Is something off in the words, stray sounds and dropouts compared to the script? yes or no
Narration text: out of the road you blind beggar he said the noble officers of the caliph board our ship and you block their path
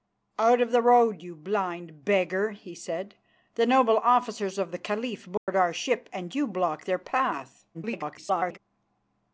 yes